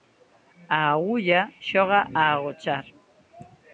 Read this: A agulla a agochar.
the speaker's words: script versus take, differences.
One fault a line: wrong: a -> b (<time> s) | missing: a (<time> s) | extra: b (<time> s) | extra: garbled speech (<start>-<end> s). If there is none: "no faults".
extra: xoga (1.7 s)